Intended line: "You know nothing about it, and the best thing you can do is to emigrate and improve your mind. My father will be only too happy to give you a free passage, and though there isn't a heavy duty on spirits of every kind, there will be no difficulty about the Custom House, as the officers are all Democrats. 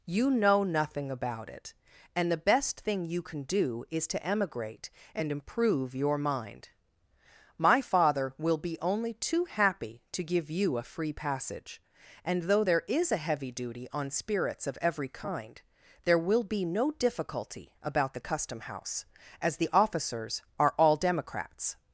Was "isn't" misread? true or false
true